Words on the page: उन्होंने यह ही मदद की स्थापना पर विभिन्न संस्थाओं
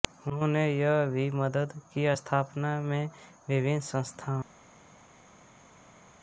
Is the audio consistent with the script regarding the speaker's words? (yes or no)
no